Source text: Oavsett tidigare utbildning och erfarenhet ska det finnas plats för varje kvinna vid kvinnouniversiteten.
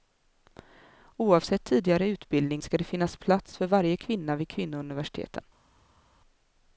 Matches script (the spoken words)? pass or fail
fail